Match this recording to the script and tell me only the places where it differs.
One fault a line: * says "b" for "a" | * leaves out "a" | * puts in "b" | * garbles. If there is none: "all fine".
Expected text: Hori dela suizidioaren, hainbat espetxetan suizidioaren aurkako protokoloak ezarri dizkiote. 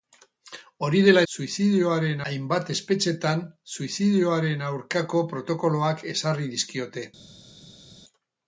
all fine